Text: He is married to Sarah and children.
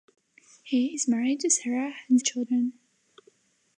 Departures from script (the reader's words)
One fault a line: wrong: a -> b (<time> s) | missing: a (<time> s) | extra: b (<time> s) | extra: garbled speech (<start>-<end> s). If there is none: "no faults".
no faults